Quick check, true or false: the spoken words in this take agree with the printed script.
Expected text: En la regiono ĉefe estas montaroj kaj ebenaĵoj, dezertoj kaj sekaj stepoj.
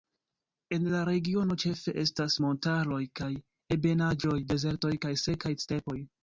true